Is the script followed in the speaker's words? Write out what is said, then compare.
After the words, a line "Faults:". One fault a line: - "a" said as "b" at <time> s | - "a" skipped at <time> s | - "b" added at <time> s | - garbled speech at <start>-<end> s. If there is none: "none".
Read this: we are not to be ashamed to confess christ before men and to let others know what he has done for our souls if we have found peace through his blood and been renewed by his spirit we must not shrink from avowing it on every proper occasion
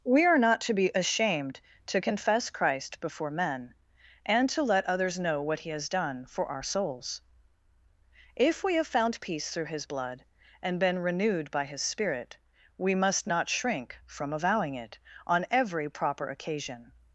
we are not to be ashamed to confess christ before men and to let others know what he has done for our souls if we have found peace through his blood and been renewed by his spirit we must not shrink from avowing it on every proper occasion
Faults:
none